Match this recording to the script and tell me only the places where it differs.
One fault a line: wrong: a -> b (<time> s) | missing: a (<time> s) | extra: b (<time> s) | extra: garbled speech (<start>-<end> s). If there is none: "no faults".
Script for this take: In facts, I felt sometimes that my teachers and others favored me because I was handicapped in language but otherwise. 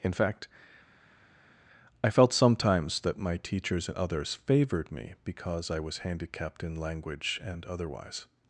wrong: facts -> fact (0.1 s)
wrong: but -> and (7.4 s)